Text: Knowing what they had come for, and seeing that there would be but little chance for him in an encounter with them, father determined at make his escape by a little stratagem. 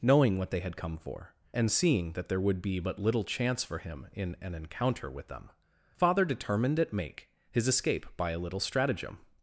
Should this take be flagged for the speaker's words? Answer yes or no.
no